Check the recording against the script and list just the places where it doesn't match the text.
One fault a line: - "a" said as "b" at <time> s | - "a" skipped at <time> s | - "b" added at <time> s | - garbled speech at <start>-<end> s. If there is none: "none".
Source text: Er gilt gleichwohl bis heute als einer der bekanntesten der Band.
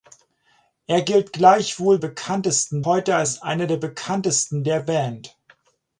- "bis" said as "bekanntesten" at 2.0 s